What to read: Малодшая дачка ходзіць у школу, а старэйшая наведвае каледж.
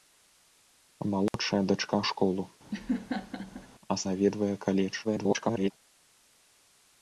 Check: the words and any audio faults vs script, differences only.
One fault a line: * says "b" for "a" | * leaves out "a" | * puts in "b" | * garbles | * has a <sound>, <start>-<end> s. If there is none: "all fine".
* has a dropout, 1.3-1.3 s
* leaves out "ходзіць"
* has a laugh, 2.7-3.7 s
* leaves out "старэйшая"
* garbles